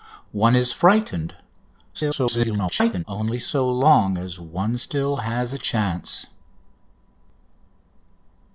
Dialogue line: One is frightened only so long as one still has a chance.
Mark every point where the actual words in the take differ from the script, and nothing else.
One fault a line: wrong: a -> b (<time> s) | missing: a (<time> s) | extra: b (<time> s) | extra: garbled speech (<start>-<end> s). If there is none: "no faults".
extra: garbled speech (1.9-3.0 s)